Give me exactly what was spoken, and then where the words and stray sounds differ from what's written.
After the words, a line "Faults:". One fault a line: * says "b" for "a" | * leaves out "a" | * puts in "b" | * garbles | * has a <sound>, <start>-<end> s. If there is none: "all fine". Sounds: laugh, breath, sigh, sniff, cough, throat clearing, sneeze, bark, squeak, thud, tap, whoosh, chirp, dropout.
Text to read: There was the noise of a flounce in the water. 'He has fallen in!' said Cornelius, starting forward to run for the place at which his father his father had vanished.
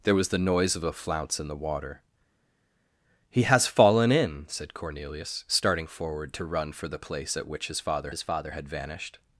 There was the noise of a flounce in the water. 'He has fallen in!' said Cornelius, starting forward to run for the place at which his father his father had vanished.
Faults:
all fine